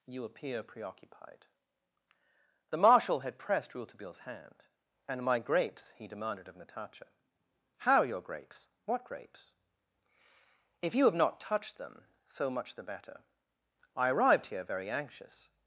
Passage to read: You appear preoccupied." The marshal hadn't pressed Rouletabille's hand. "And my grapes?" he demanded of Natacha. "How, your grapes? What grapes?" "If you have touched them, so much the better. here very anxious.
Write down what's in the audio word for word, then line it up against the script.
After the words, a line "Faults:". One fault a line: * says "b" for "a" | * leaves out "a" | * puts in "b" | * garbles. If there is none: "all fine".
You appear preoccupied." The marshal had pressed Rouletabille's hand. "And my grapes?" he demanded of Natacha. "How, your grapes? What grapes?" "If you have not touched them, so much the better. I arrived here very anxious.
Faults:
* says "had" for "hadn't"
* puts in "not"
* puts in "I arrived"